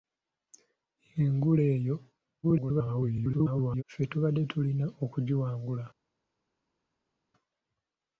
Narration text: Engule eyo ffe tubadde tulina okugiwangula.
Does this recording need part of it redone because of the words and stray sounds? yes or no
yes